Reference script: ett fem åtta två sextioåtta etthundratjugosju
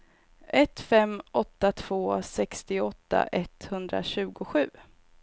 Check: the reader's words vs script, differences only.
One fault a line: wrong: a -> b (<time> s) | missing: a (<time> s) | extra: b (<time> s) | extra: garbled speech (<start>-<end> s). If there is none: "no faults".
no faults